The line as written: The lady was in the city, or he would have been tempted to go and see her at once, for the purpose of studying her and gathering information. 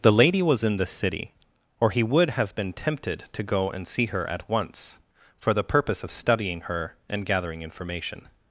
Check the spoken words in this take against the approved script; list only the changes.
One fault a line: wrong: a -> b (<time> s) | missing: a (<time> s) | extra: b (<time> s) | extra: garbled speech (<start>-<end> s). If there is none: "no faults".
no faults